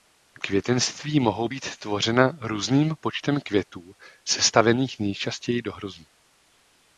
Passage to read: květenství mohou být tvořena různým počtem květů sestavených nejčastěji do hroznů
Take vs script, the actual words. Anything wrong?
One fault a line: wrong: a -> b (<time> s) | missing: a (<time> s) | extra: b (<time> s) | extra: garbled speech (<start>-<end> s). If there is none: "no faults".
no faults